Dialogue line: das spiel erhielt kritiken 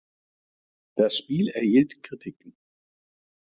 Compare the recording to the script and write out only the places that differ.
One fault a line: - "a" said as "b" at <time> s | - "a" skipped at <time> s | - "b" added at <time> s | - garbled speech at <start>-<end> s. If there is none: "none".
none